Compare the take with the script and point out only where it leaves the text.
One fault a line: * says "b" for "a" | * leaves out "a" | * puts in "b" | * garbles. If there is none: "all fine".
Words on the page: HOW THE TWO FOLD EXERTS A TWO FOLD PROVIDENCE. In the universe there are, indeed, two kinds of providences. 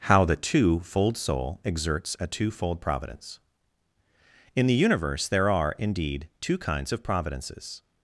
* puts in "SOUL"